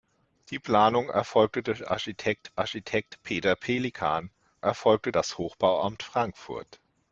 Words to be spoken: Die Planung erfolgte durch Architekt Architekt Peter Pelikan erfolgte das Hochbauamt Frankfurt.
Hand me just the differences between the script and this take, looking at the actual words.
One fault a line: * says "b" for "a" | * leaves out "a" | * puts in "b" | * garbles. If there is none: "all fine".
all fine